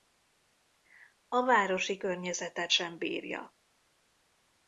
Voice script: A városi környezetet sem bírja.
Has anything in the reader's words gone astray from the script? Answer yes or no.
no